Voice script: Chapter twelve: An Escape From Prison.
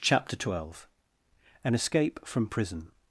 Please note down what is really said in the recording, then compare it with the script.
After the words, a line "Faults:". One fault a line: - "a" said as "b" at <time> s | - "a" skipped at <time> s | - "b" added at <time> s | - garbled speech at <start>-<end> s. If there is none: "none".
Chapter twelve: An Escape From Prison.
Faults:
none